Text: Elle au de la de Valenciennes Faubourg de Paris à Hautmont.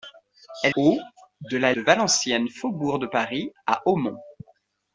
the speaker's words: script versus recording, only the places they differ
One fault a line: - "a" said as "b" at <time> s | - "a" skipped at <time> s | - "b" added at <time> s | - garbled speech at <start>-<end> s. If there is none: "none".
none